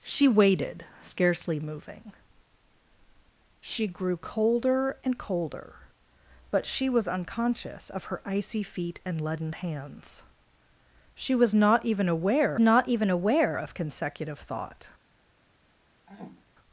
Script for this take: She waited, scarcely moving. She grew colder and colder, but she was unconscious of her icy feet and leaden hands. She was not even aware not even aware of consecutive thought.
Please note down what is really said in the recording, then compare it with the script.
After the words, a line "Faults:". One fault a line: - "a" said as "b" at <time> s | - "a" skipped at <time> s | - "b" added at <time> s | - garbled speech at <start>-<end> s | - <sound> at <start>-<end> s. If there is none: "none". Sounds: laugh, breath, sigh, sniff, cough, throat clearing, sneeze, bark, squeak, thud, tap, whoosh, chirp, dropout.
She waited, scarcely moving. She grew colder and colder, but she was unconscious of her icy feet and leaden hands. She was not even aware not even aware of consecutive thought.
Faults:
- throat clearing at 16.1-16.5 s